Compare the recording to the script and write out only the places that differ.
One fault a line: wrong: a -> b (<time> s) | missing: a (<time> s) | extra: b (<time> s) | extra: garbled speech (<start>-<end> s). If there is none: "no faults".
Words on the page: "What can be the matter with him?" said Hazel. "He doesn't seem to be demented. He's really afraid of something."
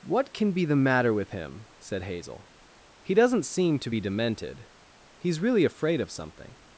no faults